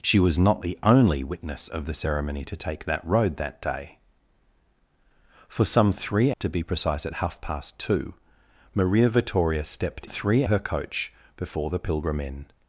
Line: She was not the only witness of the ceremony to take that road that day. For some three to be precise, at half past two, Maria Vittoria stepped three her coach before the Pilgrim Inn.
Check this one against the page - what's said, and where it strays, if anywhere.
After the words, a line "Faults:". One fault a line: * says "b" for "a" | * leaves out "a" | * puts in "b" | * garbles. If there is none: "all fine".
She was not the only witness of the ceremony to take that road that day. For some three to be precise, at half past two, Maria Vittoria stepped three her coach before the Pilgrim Inn.
Faults:
all fine